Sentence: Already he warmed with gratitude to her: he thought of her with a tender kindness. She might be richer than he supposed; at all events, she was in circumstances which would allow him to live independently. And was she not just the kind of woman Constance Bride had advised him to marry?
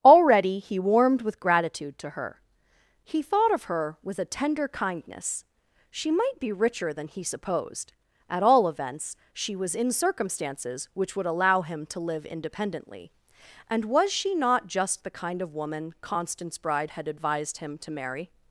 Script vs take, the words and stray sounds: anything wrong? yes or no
no